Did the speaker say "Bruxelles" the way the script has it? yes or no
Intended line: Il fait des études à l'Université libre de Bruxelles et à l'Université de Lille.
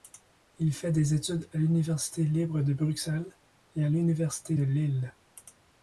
yes